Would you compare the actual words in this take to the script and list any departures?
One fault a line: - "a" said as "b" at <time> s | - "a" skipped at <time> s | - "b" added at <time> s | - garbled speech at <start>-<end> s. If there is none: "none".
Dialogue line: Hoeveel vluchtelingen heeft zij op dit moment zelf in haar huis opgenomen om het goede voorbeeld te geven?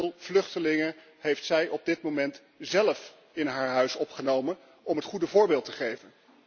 none